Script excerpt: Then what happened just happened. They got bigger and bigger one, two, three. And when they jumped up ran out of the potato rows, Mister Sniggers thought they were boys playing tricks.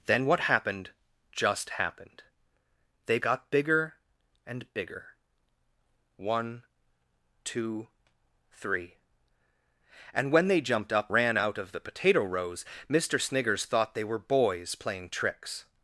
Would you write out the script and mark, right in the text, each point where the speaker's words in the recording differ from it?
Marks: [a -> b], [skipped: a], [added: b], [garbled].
Then what happened just happened. They got bigger and bigger one, two, three. And when they jumped up ran out of the potato rows, Mister Sniggers thought they were boys playing tricks.